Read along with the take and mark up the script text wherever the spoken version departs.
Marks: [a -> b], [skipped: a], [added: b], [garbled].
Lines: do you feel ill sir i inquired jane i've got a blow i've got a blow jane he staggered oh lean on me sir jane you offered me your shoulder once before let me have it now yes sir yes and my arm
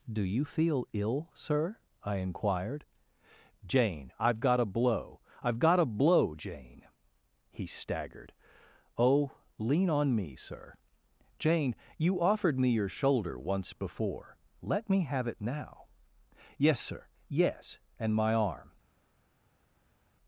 do you feel ill sir i inquired jane i've got a blow i've got a blow jane he staggered oh lean on me sir jane you offered me your shoulder once before let me have it now yes sir yes and my arm